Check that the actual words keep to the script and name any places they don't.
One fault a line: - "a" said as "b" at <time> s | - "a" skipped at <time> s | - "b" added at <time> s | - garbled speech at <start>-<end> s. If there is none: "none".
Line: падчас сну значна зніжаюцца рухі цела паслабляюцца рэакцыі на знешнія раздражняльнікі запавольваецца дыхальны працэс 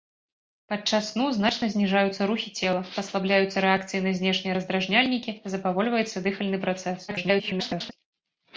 - garbled speech at 7.1-7.9 s